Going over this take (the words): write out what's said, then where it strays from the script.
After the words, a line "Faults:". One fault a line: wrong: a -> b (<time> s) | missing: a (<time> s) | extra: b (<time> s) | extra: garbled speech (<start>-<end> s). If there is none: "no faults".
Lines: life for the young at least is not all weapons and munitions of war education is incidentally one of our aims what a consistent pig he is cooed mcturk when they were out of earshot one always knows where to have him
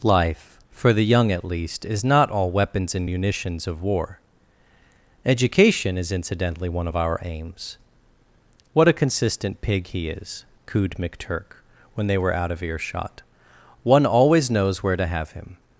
life for the young at least is not all weapons and munitions of war education is incidentally one of our aims what a consistent pig he is cooed mcturk when they were out of earshot one always knows where to have him
Faults:
no faults